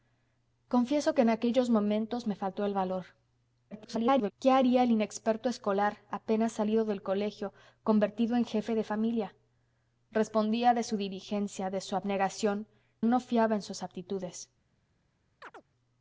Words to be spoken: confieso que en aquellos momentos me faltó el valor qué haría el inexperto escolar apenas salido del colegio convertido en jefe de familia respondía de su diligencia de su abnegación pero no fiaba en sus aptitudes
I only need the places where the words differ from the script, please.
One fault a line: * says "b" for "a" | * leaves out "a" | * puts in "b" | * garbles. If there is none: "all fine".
* garbles
* leaves out "pero"